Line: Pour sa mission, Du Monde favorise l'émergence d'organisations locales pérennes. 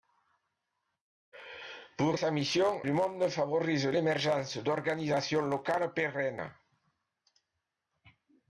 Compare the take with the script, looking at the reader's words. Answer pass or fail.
pass